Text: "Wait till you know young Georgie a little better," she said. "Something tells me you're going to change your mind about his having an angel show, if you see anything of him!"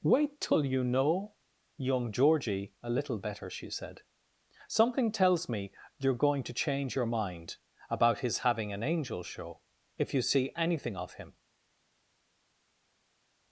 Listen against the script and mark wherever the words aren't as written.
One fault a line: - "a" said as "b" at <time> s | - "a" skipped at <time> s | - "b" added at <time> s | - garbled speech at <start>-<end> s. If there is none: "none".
none